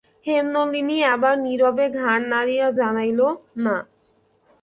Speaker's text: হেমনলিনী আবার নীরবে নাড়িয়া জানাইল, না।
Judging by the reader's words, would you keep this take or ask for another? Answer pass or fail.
fail